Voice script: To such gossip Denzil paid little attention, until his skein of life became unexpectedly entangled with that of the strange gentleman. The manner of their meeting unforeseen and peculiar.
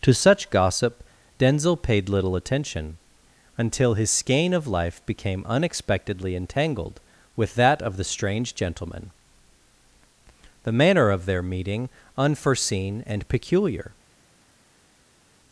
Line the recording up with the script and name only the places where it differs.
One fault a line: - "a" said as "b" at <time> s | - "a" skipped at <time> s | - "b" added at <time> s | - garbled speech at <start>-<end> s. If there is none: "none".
none